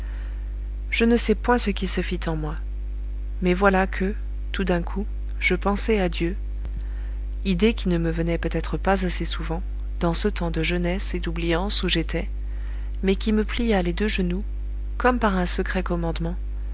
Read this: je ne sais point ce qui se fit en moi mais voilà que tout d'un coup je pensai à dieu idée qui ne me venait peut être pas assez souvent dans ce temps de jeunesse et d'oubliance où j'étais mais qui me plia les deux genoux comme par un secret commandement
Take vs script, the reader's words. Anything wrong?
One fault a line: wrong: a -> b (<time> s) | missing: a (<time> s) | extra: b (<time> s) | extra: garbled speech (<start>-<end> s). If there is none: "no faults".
no faults